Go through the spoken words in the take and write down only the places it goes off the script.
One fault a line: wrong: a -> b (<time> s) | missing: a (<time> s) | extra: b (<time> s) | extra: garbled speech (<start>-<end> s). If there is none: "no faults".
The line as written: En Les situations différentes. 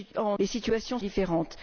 no faults